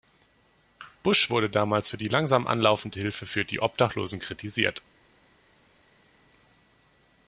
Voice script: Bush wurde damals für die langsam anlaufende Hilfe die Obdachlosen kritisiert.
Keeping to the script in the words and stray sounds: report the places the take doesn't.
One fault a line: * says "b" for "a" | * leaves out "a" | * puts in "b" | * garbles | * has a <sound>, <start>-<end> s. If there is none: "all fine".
* puts in "für"